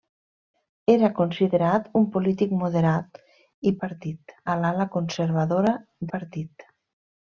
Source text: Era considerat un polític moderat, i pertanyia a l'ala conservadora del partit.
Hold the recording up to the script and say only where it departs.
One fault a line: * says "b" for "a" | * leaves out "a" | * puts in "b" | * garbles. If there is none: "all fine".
* says "partit" for "pertanyia"
* leaves out "del"